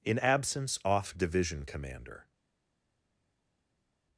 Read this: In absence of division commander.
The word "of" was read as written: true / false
false